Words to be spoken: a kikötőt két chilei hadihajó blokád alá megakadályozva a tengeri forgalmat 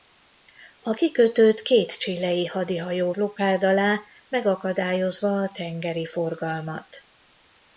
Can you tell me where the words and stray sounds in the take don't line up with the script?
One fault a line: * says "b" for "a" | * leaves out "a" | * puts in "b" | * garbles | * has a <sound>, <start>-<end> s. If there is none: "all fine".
all fine